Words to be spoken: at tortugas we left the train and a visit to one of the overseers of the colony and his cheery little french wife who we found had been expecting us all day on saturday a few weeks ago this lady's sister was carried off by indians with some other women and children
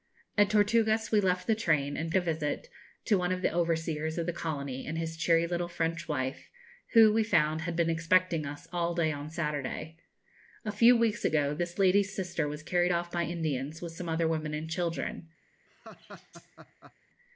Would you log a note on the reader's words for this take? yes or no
no